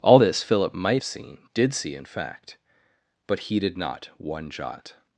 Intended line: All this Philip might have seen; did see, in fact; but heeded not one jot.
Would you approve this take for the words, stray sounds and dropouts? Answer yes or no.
no